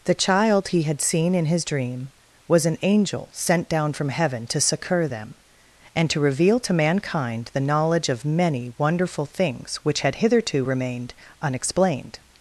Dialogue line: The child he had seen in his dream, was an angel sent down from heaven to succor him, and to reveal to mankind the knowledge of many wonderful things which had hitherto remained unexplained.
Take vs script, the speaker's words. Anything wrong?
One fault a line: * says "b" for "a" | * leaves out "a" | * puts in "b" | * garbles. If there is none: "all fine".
* says "them" for "him"